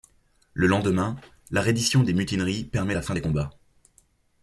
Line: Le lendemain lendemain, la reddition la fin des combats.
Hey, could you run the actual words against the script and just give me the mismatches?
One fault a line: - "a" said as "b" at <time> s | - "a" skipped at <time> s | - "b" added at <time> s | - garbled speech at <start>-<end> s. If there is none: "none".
- "lendemain" skipped at 1.1 s
- "des mutineries permet" added at 2.0 s